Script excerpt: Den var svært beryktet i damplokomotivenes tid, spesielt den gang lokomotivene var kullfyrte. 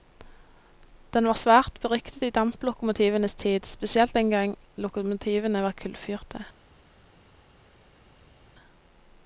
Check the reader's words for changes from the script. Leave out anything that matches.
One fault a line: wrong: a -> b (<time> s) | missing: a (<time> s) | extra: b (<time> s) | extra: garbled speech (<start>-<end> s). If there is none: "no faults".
no faults